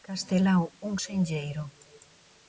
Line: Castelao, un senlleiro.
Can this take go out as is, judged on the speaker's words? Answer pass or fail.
pass